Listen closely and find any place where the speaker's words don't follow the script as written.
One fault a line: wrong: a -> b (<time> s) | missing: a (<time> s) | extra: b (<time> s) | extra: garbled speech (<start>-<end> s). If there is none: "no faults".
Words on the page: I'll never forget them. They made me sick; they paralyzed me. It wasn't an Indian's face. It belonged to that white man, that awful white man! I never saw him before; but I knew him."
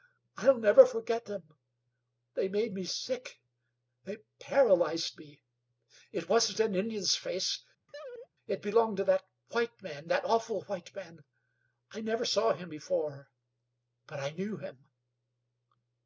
no faults